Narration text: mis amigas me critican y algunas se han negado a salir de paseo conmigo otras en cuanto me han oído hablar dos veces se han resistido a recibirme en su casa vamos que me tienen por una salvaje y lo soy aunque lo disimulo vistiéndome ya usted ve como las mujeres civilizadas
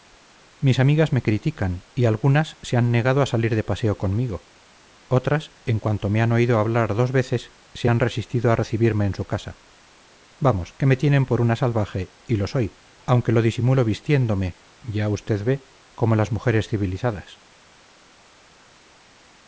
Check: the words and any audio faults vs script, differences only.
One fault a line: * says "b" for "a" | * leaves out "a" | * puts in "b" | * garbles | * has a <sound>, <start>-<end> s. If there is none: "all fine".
all fine